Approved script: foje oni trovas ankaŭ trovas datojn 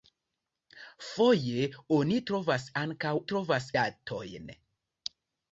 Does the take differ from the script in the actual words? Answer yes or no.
no